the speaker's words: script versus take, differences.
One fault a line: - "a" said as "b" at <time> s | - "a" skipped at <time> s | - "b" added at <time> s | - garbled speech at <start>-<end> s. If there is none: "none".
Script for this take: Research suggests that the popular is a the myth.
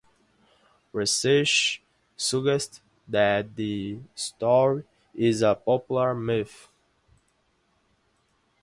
- "popular" said as "story" at 4.2 s
- "the" said as "popular" at 5.5 s